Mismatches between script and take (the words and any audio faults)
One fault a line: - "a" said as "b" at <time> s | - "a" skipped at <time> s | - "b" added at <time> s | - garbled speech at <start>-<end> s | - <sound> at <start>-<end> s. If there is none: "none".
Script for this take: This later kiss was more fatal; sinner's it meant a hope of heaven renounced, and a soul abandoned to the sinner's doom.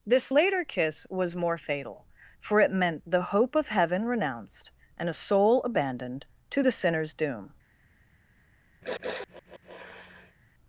- "sinner's" said as "for" at 2.4 s
- "a" said as "the" at 3.1 s
- sniff at 8.8-10.4 s